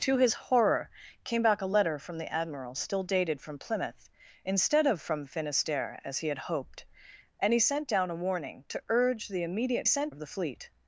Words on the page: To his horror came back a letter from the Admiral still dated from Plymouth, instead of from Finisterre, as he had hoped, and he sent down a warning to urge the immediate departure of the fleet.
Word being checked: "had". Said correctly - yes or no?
yes